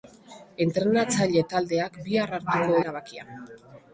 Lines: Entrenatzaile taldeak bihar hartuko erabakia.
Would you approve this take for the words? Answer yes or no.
yes